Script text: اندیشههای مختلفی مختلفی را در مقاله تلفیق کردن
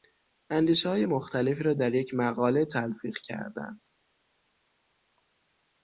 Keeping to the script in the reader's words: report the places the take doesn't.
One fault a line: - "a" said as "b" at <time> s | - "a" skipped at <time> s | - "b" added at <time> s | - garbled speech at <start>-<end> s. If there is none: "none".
- "مختلفی" skipped at 1.6 s
- "یک" added at 1.9 s